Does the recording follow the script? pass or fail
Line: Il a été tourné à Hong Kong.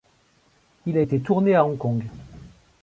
pass